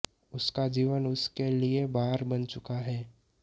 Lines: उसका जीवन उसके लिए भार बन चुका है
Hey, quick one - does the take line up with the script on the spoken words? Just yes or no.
yes